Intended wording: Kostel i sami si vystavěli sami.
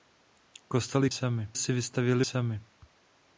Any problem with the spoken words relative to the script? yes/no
no